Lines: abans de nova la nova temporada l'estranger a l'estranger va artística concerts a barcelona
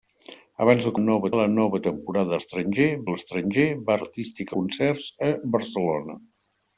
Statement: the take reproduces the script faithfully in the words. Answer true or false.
true